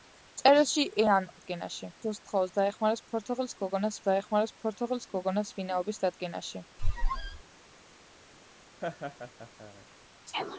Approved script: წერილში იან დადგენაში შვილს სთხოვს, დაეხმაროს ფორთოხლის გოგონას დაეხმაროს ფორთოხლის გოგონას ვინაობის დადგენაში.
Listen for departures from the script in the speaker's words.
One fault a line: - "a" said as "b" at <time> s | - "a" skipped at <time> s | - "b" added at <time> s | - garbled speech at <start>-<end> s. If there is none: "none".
none